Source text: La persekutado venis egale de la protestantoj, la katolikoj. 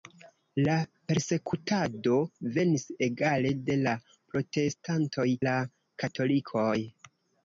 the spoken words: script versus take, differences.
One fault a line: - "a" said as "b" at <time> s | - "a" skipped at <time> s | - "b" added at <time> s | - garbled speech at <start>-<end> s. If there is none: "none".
none